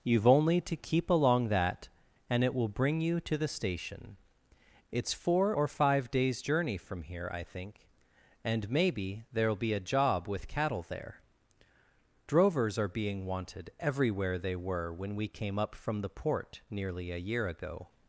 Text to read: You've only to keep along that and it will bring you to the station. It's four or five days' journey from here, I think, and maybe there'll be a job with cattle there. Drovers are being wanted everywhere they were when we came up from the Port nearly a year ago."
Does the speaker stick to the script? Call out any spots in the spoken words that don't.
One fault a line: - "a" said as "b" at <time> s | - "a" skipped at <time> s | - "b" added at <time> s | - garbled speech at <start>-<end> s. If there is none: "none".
none